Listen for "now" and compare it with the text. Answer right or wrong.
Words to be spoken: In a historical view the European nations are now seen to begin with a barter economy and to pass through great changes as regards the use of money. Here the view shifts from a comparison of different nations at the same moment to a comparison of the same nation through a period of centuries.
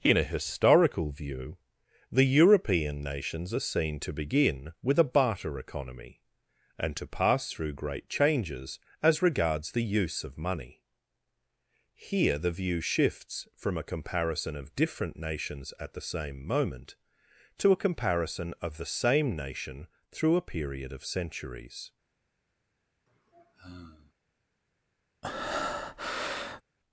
wrong